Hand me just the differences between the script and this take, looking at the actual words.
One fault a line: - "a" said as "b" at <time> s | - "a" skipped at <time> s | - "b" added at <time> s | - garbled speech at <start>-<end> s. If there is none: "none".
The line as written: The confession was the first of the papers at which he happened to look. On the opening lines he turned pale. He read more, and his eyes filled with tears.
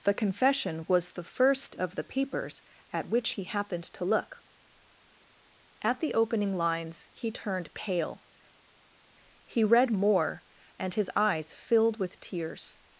- "On" said as "At" at 5.8 s